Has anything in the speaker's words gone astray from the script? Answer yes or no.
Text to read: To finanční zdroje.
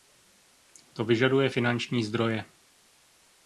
yes